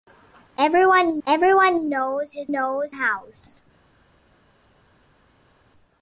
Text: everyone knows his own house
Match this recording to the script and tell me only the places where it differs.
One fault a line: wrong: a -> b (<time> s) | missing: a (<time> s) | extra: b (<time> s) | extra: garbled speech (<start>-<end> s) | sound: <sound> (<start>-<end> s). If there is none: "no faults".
extra: everyone (1.3 s)
wrong: own -> knows (2.5 s)